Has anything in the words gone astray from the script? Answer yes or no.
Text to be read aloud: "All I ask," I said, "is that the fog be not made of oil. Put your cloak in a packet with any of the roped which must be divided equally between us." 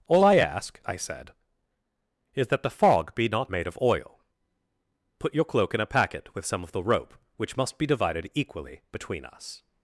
yes